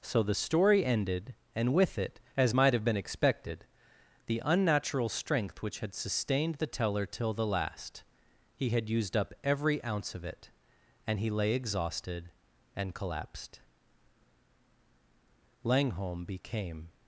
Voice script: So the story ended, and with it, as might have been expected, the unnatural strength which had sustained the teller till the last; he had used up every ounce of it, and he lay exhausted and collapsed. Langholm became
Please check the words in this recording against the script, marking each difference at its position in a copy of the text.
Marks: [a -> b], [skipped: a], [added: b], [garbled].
So the story ended, and with it, as might have been expected, the unnatural strength which had sustained the teller till the last; he had used up every ounce of it, and he lay exhausted and collapsed. Langholm became